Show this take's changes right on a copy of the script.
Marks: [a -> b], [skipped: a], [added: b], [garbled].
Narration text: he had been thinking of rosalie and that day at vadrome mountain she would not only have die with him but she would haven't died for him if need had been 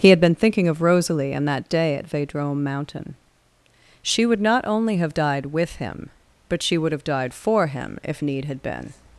he had been thinking of rosalie and that day at vadrome mountain she would not only have [die -> died] with him but she would [haven't -> have] died for him if need had been